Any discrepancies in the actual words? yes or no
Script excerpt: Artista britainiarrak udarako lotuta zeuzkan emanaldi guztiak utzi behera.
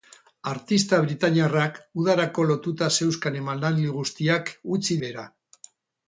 no